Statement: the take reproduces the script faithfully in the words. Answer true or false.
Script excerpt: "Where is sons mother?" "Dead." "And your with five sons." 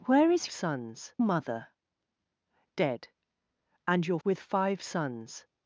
true